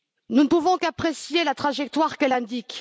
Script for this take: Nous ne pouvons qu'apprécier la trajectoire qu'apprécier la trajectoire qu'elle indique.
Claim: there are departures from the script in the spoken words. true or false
true